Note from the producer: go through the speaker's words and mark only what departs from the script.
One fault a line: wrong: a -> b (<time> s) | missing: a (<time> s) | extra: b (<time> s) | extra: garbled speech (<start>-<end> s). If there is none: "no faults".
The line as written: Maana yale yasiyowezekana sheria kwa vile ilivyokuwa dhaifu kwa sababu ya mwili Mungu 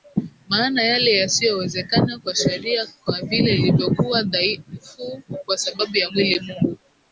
extra: kwa (2.2 s)